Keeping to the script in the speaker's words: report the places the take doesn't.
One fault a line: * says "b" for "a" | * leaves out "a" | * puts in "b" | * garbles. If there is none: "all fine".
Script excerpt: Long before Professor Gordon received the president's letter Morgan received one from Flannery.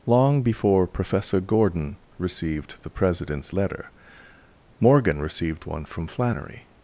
all fine